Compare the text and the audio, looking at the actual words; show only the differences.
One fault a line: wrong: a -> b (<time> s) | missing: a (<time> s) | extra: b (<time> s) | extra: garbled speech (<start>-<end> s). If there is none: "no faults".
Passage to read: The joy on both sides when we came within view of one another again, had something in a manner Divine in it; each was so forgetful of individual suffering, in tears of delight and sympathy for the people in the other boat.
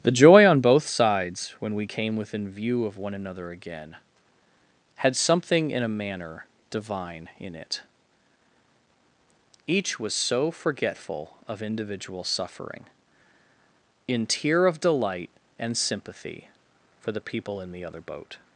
wrong: tears -> tear (14.3 s)